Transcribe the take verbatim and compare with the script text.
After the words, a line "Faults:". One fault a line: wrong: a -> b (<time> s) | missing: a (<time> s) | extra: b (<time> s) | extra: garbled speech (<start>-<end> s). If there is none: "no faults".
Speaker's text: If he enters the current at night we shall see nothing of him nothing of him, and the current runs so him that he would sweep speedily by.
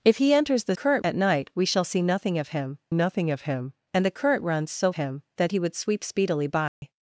If he enters the current at night we shall see nothing of him nothing of him, and the current runs so him that he would sweep speedily by.
Faults:
no faults